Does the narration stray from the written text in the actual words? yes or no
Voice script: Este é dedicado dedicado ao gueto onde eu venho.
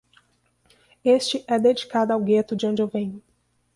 yes